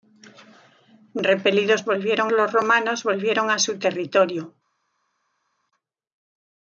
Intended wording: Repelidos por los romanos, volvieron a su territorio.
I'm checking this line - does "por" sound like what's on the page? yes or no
no